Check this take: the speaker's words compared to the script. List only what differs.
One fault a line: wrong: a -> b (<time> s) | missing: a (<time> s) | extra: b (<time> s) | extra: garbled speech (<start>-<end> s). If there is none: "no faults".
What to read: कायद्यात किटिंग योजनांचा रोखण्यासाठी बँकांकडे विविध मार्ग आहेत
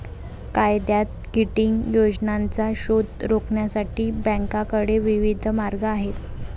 extra: शोध (2.8 s)